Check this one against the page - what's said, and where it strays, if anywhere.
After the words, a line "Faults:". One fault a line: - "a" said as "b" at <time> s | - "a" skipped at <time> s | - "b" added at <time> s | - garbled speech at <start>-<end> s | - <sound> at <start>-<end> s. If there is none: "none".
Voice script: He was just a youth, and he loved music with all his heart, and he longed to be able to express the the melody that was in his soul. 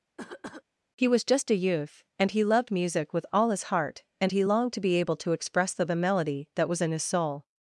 He was just a youth, and he loved music with all his heart, and he longed to be able to express the the melody that was in his soul.
Faults:
- cough at 0.2-0.6 s